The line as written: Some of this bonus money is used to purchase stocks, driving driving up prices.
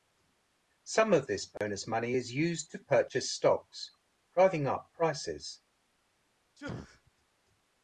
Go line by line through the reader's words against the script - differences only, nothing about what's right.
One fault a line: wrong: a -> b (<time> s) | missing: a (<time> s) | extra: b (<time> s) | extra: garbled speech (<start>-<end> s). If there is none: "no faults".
missing: driving (4.6 s)